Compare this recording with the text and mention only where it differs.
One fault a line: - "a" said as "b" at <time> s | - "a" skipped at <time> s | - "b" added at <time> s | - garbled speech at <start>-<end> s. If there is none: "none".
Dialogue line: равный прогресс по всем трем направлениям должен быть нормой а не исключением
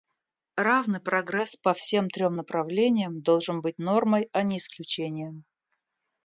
none